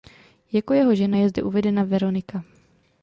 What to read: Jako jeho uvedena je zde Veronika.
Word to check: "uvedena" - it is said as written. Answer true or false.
false